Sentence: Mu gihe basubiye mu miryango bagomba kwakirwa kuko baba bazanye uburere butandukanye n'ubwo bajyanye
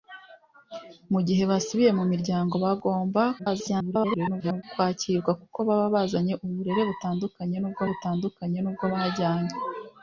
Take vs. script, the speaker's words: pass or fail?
fail